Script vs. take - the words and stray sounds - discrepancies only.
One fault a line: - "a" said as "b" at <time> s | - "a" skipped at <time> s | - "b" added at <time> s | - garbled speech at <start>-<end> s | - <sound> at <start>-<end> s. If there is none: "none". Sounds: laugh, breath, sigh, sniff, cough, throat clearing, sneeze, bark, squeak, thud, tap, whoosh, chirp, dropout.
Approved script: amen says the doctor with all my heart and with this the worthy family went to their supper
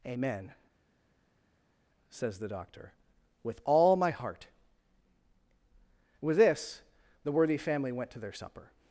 - "and" skipped at 4.5 s